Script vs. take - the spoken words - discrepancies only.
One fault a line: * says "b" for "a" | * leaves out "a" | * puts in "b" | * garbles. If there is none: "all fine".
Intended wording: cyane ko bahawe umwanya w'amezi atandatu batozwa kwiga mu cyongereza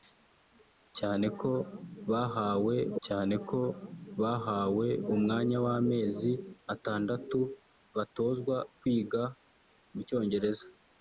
* puts in "cyane ko bahawe"